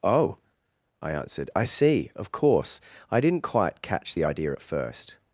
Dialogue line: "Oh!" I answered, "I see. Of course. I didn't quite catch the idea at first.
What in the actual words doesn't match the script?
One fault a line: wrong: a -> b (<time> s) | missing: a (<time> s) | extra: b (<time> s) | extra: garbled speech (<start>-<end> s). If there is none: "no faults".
no faults